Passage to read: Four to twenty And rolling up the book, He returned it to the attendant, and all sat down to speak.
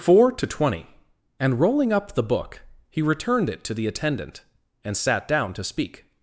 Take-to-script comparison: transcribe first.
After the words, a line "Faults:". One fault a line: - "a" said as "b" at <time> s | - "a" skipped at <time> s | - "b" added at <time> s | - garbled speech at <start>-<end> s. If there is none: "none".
Four to twenty And rolling up the book, He returned it to the attendant, and sat down to speak.
Faults:
- "all" skipped at 4.9 s